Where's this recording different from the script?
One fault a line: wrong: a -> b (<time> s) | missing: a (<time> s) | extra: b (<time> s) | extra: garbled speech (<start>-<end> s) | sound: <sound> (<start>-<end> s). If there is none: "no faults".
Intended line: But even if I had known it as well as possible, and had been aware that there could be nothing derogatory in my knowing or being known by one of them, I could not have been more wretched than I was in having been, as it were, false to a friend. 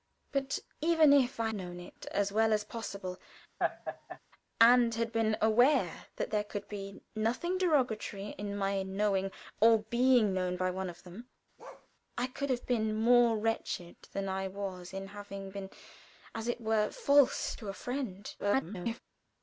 missing: had (1.5 s)
sound: laugh (3.6-4.2 s)
sound: bark (11.6-11.9 s)
missing: not (12.5 s)
extra: garbled speech (18.4-19.0 s)